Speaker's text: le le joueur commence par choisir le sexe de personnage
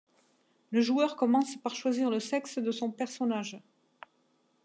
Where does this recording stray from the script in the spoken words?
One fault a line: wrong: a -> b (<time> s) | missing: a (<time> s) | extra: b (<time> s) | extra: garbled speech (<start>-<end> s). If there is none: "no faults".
missing: le (0.8 s)
extra: son (2.7 s)